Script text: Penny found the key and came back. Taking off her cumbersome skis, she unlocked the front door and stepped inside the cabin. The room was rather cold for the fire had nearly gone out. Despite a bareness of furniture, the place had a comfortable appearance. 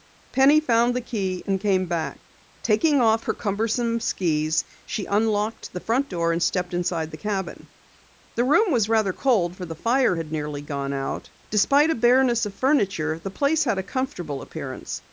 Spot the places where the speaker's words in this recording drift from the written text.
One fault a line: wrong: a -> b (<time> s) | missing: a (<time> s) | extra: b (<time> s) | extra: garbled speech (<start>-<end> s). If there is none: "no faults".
no faults